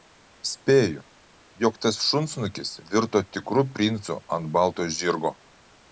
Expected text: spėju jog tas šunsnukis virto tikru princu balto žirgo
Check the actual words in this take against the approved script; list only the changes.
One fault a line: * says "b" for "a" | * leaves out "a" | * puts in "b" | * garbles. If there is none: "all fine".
* puts in "ant"